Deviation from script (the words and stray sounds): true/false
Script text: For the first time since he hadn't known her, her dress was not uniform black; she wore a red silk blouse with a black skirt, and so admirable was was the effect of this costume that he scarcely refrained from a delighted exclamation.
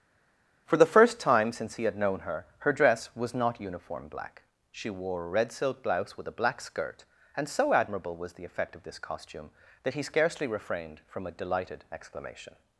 true